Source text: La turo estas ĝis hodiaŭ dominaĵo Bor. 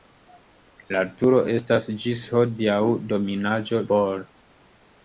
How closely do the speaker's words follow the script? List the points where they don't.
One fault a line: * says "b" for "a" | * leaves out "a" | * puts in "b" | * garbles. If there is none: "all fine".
all fine